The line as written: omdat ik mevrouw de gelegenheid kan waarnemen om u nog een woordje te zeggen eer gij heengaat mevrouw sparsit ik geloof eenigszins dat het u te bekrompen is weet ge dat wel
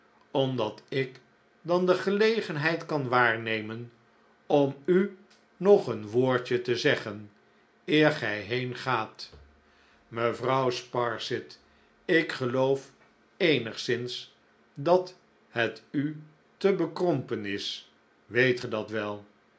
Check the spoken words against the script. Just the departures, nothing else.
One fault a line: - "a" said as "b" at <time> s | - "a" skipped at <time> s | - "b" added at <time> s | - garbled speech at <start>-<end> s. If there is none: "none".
- "mevrouw" said as "dan" at 1.6 s